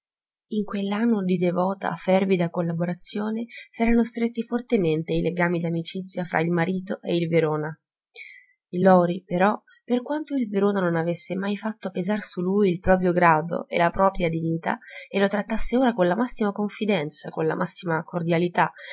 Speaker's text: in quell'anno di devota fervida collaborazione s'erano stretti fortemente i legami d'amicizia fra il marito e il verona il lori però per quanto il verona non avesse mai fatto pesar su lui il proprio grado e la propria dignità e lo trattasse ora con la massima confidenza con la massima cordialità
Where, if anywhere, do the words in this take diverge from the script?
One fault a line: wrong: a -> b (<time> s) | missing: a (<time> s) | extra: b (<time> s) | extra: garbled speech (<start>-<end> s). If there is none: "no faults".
no faults